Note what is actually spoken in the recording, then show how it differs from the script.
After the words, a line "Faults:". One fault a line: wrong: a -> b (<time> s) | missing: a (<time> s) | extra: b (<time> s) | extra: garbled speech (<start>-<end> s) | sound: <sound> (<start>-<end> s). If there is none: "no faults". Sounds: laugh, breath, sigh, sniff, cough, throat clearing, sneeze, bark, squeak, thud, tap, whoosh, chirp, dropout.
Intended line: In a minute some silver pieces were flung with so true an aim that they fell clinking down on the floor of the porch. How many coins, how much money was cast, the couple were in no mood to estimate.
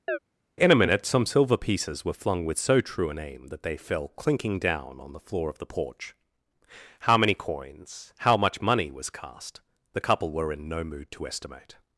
In a minute some silver pieces were flung with so true an aim that they fell clinking down on the floor of the porch. How many coins, how much money was cast, the couple were in no mood to estimate.
Faults:
sound: chirp (0.1-0.2 s)